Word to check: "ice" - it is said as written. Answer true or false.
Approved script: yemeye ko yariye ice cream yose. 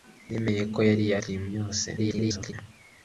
false